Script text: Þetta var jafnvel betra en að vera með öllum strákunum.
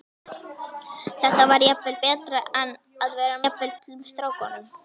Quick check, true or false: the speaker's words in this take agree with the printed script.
false